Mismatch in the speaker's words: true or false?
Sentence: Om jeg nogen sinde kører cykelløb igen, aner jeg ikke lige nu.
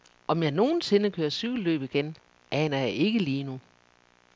false